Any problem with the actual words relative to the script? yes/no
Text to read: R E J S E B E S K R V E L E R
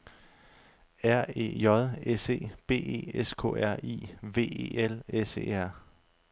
yes